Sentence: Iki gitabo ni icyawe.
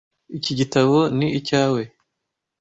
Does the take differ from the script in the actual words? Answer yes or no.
no